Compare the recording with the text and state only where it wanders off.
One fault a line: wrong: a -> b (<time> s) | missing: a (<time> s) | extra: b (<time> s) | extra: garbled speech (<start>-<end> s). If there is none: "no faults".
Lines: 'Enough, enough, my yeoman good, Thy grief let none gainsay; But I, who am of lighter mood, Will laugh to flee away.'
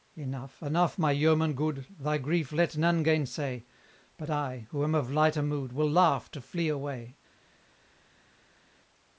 no faults